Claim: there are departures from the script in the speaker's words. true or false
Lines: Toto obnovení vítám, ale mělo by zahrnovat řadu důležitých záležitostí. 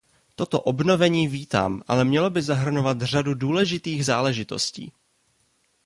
false